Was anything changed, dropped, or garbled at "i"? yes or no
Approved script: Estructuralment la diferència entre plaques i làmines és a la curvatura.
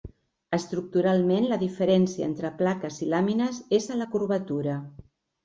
no